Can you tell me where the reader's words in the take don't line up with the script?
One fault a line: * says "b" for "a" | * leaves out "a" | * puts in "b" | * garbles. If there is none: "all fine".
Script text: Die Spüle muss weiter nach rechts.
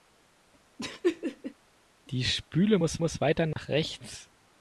* puts in "muss"